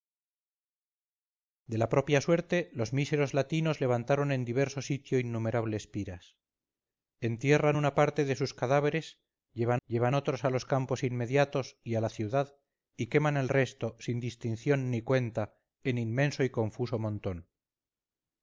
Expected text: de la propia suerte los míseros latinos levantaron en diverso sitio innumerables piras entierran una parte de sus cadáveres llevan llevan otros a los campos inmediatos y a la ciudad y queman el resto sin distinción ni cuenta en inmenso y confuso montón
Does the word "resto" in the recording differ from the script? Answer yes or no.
no